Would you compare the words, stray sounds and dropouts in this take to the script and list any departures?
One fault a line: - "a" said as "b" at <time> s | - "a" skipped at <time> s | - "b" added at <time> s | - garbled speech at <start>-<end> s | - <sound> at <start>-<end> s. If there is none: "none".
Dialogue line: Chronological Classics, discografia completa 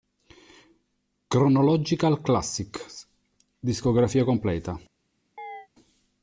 - chirp at 5.4-5.7 s